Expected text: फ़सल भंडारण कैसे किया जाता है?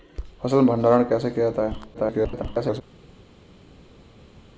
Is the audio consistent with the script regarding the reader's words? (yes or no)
no